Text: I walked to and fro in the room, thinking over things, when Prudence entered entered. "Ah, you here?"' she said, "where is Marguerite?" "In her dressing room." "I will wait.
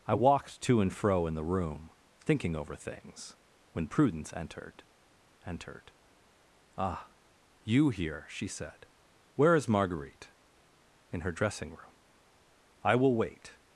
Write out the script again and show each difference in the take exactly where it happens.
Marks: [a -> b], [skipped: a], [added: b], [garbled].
I walked to and fro in the room, thinking over things, when Prudence entered entered. "Ah, you here?"' she said, "where is Marguerite?" "In her dressing room." "I will wait.